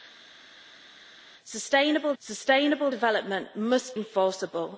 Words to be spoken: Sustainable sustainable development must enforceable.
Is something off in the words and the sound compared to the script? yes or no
no